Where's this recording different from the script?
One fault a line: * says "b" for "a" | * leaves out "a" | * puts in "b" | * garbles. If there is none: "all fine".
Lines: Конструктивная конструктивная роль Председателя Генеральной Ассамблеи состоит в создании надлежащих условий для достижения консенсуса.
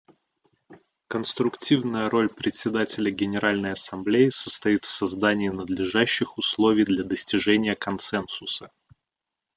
* leaves out "конструктивная"